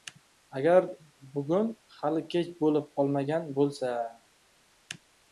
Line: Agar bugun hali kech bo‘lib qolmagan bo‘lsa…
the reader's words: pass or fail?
pass